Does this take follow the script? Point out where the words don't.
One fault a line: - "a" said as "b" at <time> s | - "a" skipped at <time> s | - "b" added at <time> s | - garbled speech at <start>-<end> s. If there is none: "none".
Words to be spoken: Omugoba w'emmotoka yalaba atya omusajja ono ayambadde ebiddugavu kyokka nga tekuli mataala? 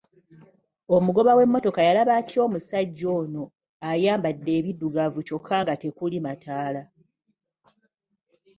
none